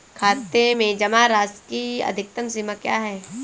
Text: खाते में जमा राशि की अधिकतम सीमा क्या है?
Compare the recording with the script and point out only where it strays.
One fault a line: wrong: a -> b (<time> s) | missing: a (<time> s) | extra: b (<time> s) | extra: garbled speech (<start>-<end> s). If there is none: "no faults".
no faults